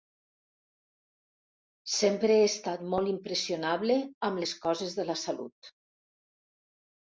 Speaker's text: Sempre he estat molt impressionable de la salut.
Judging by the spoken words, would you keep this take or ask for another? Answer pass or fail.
fail